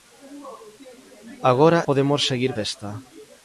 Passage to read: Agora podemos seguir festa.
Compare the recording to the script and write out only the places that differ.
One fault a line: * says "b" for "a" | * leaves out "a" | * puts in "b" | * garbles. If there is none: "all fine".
all fine